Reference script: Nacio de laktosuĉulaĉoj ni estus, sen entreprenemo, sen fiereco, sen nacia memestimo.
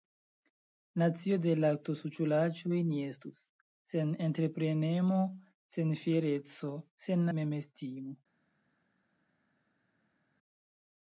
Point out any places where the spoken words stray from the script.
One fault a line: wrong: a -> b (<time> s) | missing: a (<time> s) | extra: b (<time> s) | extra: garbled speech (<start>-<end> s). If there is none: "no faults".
missing: nacia (7.2 s)